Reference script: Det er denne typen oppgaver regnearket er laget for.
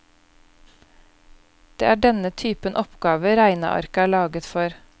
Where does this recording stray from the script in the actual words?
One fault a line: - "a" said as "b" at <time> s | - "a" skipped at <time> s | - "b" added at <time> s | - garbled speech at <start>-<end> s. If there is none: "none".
none